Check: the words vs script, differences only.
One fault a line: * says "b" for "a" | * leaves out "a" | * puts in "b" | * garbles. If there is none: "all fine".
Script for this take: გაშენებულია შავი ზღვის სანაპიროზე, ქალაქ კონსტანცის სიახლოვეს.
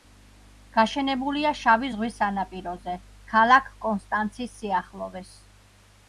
all fine